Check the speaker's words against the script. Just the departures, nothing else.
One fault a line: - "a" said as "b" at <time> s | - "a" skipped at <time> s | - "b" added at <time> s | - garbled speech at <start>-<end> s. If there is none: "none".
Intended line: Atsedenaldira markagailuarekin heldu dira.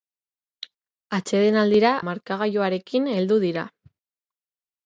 none